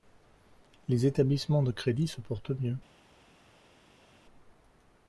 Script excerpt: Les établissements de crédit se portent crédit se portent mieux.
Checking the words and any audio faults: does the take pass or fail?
fail